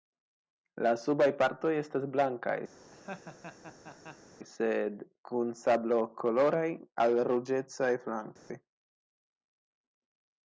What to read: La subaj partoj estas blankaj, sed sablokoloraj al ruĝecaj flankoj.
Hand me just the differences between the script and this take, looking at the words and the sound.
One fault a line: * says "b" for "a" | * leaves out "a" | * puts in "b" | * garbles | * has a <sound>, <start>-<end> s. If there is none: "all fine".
* has a laugh, 2.8-4.3 s
* puts in "kun"
* has a dropout, 8.4-8.5 s